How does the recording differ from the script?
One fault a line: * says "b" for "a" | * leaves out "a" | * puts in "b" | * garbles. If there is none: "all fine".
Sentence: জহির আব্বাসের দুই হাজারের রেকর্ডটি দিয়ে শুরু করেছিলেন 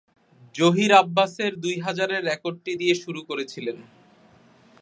all fine